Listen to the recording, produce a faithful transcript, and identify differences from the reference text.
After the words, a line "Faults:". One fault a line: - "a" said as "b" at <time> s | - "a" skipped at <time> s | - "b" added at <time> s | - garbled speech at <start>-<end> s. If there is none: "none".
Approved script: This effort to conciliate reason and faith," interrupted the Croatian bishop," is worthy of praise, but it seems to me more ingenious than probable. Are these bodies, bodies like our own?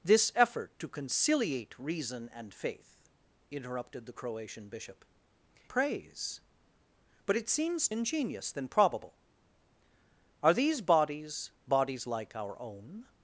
This effort to conciliate reason and faith," interrupted the Croatian bishop," praise, but it seems ingenious than probable. Are these bodies, bodies like our own?
Faults:
- "is worthy of" skipped at 5.0 s
- "to me more" skipped at 7.9 s